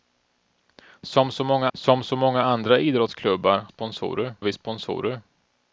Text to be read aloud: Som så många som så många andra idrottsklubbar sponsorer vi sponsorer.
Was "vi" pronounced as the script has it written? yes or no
yes